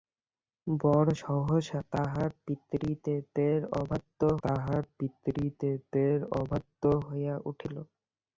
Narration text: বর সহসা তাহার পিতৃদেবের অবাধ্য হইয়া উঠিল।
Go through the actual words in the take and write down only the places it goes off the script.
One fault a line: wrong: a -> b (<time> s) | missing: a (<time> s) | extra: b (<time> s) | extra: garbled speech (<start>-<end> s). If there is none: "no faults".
extra: তাহার পিতৃদেবের অবাধ্য (4.4 s)